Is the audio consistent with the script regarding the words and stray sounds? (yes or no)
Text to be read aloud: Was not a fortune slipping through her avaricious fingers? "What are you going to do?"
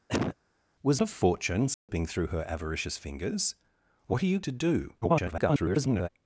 no